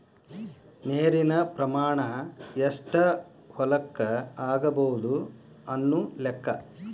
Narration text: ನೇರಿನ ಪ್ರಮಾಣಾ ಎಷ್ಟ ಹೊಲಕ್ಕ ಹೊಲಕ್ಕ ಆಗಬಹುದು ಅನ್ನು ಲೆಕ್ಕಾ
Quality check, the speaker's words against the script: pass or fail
fail